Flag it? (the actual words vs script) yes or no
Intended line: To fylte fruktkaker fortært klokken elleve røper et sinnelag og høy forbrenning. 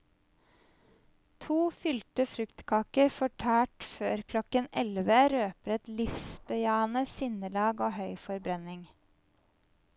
yes